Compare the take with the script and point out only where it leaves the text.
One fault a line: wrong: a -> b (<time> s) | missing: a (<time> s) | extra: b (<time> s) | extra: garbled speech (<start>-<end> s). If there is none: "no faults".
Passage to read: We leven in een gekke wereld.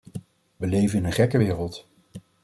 no faults